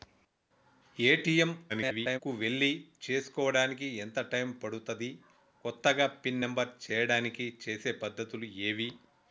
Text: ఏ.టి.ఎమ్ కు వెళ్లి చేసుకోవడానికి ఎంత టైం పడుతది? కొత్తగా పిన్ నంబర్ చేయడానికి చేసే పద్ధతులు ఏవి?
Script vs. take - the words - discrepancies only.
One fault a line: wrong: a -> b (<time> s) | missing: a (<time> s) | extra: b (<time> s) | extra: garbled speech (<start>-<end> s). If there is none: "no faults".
extra: garbled speech (1.7-2.2 s)